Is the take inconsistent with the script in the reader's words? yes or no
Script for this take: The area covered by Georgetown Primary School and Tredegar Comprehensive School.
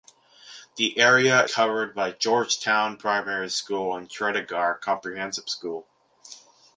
no